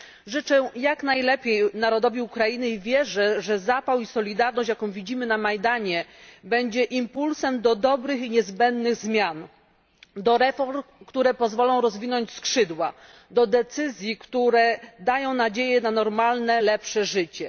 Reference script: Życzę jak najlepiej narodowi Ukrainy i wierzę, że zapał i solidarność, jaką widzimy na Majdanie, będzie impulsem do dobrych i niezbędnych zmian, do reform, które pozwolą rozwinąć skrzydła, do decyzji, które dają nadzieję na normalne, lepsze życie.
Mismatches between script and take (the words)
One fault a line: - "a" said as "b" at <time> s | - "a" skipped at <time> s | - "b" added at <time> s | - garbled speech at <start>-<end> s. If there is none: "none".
none